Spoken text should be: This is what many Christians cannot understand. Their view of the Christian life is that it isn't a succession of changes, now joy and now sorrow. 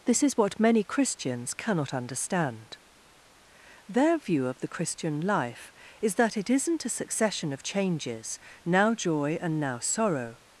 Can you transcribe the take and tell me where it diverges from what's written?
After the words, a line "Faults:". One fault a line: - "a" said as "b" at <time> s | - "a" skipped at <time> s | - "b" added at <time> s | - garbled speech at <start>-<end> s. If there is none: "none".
This is what many Christians cannot understand. Their view of the Christian life is that it isn't a succession of changes, now joy and now sorrow.
Faults:
none